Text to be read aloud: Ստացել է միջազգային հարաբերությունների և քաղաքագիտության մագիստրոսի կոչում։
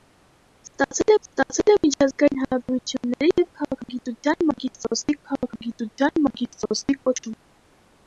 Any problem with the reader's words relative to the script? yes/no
yes